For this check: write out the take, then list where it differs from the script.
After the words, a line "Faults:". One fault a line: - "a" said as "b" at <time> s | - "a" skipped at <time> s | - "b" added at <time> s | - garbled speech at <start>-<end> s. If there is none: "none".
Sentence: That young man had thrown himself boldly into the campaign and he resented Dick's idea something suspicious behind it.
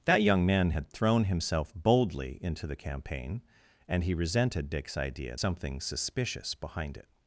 That young man had thrown himself boldly into the campaign and he resented Dick's idea something suspicious behind it.
Faults:
none